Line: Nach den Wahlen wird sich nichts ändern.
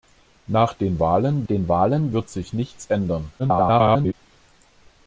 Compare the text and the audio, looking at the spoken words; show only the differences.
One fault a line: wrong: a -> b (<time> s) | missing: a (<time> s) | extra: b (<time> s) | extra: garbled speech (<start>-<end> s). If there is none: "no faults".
extra: den Wahlen (1.4 s)
extra: garbled speech (3.4-4.1 s)